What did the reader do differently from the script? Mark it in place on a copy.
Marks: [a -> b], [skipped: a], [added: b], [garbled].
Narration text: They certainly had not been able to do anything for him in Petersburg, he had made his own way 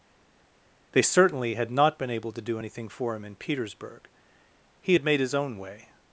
They certainly had not been able to do anything for him in Petersburg, he had made his own way